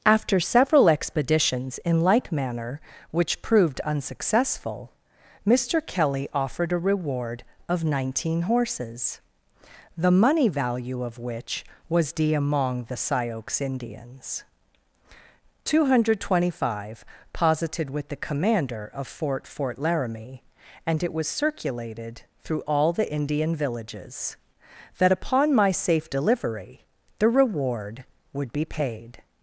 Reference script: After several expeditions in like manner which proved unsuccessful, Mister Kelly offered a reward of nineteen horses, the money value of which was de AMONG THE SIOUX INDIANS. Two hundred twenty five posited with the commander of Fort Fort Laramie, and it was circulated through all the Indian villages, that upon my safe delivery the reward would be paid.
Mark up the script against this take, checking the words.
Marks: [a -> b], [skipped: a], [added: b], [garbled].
After several expeditions in like manner which proved unsuccessful, Mister Kelly offered a reward of nineteen horses, the money value of which was de AMONG THE SIOUX INDIANS. Two hundred twenty five posited with the commander of Fort Fort Laramie, and it was circulated through all the Indian villages, that upon my safe delivery the reward would be paid.